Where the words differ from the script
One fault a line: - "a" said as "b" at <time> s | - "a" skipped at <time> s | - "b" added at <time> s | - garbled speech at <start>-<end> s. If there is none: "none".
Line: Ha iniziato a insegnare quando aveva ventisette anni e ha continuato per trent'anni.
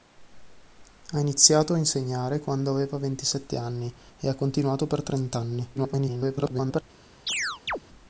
- garbled speech at 5.8-6.8 s